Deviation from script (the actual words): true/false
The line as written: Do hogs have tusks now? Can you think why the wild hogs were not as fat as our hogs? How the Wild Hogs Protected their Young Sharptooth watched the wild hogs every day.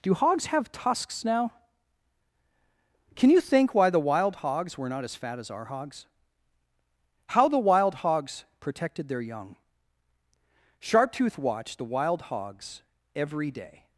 false